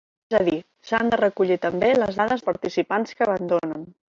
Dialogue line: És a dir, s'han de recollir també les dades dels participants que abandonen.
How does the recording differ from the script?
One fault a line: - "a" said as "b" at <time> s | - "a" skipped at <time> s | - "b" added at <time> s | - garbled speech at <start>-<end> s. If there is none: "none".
- "dels" skipped at 2.5 s